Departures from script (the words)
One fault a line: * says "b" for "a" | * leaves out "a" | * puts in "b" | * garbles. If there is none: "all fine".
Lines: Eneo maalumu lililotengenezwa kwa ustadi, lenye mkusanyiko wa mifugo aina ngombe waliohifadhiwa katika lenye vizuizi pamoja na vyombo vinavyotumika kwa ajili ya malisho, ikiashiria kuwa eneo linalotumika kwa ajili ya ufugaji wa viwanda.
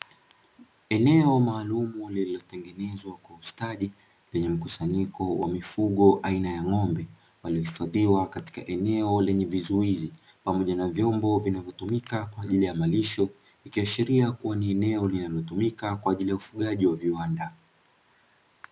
* puts in "ya"
* puts in "eneo"
* puts in "ni"